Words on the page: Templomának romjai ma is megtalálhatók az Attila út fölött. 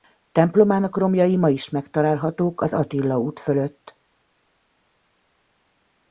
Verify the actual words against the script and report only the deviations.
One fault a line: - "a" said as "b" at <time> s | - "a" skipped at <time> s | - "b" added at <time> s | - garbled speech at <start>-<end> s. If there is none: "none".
none